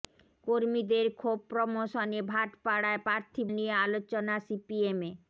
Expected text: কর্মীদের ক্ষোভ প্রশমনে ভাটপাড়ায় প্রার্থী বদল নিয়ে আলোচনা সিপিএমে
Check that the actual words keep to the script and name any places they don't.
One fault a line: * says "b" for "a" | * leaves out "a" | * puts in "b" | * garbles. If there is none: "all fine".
* leaves out "বদল"